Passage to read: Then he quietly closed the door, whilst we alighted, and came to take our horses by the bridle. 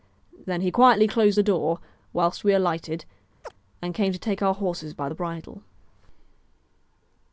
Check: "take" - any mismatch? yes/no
no